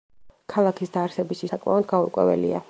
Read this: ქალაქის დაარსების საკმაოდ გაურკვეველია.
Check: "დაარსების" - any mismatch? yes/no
no